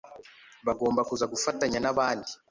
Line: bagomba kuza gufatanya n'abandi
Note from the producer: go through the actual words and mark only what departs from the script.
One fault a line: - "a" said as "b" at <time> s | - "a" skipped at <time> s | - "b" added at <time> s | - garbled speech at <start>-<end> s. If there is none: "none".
none